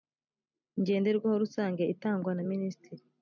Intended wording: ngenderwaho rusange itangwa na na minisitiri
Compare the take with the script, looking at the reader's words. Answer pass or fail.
fail